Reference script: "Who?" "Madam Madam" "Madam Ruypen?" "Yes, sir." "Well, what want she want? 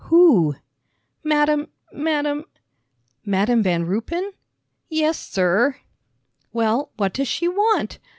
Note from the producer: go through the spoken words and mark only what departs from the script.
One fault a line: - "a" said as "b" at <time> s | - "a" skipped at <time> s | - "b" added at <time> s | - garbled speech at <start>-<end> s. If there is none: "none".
- "Van" added at 3.6 s
- "want" said as "does" at 7.1 s